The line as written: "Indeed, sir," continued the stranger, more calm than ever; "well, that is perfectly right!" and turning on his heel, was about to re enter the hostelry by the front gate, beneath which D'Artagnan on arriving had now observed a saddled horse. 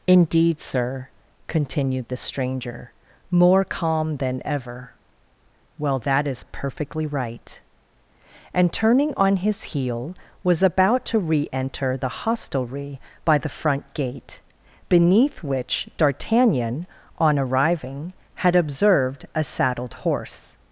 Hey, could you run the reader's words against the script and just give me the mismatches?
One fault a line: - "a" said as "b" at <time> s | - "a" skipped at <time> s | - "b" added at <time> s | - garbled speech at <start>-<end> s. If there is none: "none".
- "now" skipped at 18.5 s